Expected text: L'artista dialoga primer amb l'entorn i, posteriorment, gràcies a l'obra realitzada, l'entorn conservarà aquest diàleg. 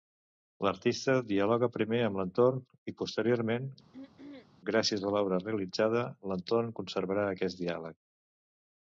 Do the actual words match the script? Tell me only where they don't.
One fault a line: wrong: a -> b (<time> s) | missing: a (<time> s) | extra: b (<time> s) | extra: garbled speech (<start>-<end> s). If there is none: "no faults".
no faults